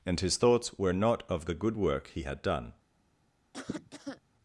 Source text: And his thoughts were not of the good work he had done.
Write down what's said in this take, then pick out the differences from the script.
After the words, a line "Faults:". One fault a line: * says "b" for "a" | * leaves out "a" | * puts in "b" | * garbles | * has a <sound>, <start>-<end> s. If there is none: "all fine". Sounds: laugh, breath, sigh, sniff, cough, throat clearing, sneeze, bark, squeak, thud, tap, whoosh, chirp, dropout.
And his thoughts were not of the good work he had done.
Faults:
* has a cough, 3.5-4.2 s